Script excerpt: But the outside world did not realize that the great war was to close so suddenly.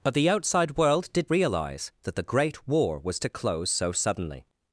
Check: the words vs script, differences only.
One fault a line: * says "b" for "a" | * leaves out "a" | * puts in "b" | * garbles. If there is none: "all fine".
* leaves out "not"